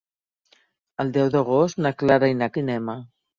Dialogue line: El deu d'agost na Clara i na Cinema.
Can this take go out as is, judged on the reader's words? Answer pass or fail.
pass